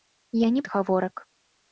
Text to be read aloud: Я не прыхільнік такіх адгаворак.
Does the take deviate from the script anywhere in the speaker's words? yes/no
yes